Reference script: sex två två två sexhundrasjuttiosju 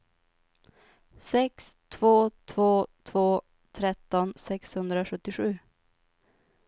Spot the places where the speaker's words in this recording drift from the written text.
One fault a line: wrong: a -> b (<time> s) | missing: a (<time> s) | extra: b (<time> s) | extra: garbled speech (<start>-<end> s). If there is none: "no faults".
extra: tretton (3.7 s)